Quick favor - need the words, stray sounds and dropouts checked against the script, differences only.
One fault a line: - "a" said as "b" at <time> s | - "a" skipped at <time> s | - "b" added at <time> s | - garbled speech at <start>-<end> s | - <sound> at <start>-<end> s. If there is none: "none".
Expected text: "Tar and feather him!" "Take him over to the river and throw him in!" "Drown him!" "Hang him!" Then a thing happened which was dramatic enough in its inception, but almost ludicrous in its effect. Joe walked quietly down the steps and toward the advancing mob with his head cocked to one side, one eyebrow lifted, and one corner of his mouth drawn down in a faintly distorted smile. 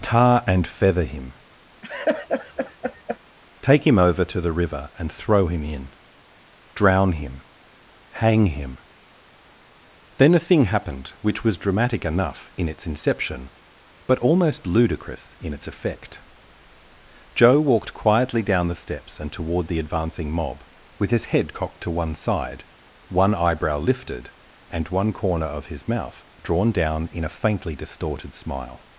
- laugh at 1.8-3.2 s